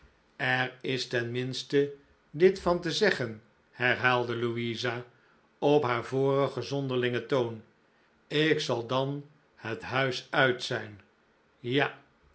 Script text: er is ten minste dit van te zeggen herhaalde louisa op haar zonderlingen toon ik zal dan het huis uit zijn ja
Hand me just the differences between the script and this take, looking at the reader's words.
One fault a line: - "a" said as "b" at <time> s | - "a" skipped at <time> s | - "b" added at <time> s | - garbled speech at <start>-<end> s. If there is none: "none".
- "vorigen" added at 6.0 s